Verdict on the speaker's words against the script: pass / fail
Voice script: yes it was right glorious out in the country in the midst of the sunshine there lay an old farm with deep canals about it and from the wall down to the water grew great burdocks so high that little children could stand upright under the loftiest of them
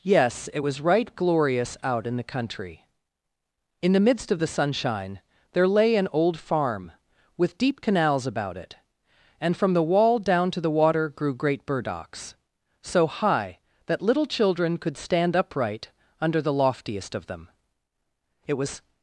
fail